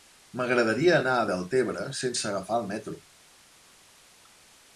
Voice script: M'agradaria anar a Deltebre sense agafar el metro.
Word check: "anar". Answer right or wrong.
right